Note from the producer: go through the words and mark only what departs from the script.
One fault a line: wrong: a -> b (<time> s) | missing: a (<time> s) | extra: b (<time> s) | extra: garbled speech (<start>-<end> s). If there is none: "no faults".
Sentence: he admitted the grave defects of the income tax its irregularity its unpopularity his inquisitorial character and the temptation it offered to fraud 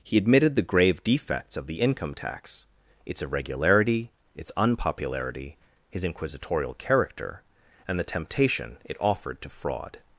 no faults